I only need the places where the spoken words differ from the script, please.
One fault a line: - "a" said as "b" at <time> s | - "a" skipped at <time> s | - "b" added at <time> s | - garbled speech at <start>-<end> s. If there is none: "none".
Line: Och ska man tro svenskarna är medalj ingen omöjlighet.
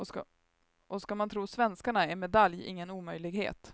none